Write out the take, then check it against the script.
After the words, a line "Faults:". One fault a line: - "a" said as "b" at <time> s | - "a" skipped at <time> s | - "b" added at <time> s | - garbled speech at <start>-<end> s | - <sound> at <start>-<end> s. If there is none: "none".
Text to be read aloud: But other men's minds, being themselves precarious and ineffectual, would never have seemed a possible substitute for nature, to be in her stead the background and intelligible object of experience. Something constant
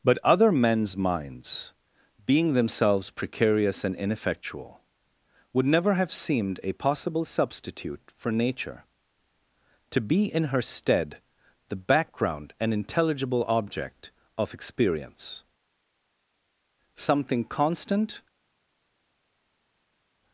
But other men's minds, being themselves precarious and ineffectual, would never have seemed a possible substitute for nature, to be in her stead the background and intelligible object of experience. Something constant
Faults:
none